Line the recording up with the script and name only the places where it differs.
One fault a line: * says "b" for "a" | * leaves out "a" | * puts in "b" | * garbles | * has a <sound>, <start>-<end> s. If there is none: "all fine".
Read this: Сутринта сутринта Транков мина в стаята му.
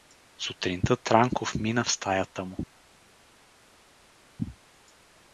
* leaves out "сутринта"